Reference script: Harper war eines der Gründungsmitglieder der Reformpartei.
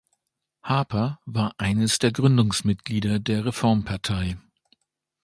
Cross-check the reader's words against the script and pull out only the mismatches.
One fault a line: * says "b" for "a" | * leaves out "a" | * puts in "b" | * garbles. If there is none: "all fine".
all fine